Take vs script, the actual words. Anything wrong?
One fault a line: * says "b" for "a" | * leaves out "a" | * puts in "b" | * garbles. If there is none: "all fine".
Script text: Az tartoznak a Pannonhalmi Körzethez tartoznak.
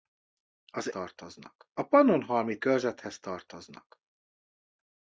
all fine